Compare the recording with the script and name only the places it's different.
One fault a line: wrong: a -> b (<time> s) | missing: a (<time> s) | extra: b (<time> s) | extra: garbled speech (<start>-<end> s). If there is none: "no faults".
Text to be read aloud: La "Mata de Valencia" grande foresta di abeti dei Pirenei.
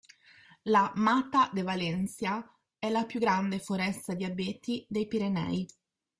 extra: è la più (2.8 s)